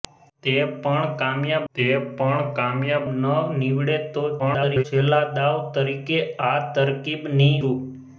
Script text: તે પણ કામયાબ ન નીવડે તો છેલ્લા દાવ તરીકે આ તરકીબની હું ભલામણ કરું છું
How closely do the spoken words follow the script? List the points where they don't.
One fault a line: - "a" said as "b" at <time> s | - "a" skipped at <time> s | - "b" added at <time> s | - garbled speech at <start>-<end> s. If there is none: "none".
- "તે પણ કામયાબ" added at 1.7 s
- garbled speech at 4.4-4.8 s
- "હું ભલામણ કરું" skipped at 7.5 s